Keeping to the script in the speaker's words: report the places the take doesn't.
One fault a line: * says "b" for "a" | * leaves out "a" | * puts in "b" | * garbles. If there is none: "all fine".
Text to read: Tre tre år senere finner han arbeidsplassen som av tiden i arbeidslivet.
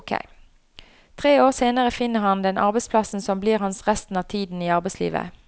* leaves out "tre"
* puts in "den"
* puts in "blir hans resten"